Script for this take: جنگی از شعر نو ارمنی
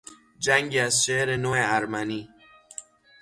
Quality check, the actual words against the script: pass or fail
pass